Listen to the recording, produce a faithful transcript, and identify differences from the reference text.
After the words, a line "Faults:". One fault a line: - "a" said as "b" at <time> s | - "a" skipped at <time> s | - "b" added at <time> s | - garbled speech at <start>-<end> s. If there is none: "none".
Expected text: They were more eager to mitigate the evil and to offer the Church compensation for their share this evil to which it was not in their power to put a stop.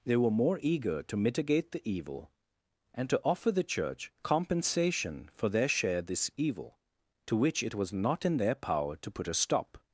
They were more eager to mitigate the evil and to offer the Church compensation for their share this evil to which it was not in their power to put a stop.
Faults:
none